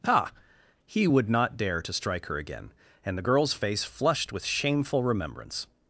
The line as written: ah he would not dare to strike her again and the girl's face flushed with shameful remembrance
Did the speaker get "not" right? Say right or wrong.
right